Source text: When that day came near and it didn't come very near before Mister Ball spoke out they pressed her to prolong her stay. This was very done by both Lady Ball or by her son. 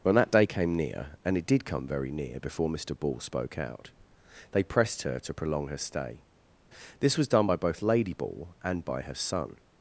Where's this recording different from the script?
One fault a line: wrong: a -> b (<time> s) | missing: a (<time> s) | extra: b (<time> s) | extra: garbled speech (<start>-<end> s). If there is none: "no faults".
wrong: didn't -> did (1.4 s)
missing: very (7.3 s)
wrong: or -> and (8.6 s)